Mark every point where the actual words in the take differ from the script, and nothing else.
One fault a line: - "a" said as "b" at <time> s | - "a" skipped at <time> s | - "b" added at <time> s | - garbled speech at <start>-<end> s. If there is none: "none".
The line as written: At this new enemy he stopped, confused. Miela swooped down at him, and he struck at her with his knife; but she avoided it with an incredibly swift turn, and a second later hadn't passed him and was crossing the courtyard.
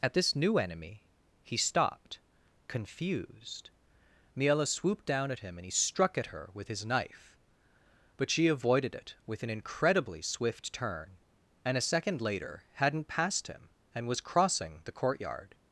none